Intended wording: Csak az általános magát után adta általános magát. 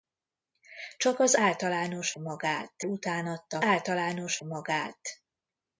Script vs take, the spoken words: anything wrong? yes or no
no